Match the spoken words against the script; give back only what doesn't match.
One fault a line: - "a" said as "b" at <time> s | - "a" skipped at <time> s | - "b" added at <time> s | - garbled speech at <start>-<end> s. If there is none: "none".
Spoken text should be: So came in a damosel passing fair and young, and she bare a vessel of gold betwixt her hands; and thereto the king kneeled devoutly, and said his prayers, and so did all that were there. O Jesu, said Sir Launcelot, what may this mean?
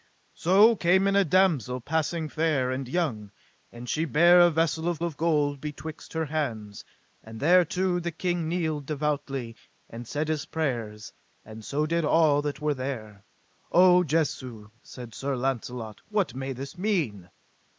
- "of" added at 5.0 s